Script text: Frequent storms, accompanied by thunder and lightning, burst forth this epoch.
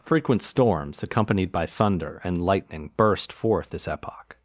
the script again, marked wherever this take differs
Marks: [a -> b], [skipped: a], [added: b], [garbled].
Frequent storms, accompanied by thunder and lightning, burst forth this epoch.